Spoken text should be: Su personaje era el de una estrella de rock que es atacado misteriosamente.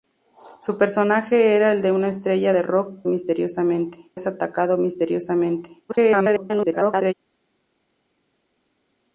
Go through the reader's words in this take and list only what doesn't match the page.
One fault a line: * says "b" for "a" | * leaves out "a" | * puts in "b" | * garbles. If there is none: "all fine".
* says "misteriosamente" for "que"
* garbles